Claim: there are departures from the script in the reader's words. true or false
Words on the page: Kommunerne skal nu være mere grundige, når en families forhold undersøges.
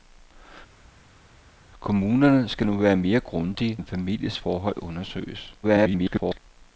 true